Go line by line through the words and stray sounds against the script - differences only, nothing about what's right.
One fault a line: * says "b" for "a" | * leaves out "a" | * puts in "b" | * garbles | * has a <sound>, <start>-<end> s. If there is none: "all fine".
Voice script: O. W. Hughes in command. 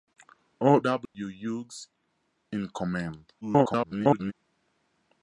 * has a dropout, 1.1-1.1 s
* garbles